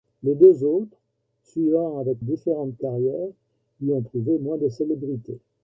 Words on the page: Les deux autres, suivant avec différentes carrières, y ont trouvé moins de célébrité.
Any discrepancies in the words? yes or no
no